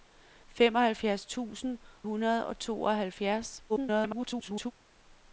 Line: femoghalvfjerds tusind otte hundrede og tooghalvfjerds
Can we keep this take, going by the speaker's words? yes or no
no